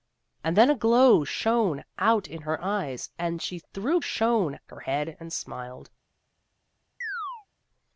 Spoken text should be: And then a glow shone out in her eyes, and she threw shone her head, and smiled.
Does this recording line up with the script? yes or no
yes